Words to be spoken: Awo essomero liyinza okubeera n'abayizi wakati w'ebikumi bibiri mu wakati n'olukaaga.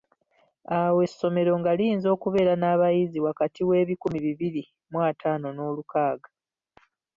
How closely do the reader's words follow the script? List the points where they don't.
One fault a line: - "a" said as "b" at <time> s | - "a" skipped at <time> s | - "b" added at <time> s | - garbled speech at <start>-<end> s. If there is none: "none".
- "nga" added at 1.6 s
- "wakati" said as "ataano" at 5.1 s